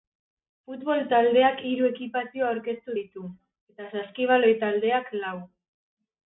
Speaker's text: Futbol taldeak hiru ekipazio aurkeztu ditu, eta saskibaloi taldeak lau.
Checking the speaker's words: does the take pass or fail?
pass